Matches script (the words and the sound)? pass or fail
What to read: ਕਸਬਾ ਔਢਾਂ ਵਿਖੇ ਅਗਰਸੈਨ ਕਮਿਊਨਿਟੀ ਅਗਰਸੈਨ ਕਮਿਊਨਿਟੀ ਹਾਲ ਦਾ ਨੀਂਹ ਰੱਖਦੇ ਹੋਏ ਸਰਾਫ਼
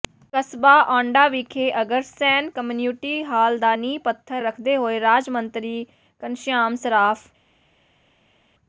fail